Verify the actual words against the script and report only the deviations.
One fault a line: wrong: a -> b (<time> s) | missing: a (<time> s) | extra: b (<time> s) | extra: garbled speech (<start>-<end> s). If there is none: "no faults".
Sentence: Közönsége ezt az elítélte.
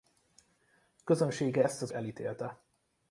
no faults